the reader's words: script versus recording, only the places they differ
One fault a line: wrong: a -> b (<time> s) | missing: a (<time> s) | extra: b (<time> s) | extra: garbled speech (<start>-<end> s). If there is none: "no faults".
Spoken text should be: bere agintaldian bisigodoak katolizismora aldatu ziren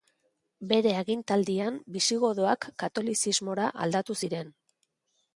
no faults